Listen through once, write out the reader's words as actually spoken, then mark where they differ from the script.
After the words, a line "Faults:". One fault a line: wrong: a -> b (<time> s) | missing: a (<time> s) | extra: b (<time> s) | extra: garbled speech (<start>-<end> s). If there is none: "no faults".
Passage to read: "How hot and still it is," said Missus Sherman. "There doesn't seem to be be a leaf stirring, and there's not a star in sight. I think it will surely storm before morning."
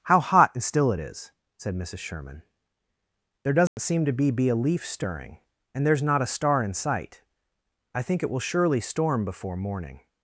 "How hot and still it is," said Missus Sherman. "There doesn't seem to be be a leaf stirring, and there's not a star in sight. I think it will surely storm before morning."
Faults:
no faults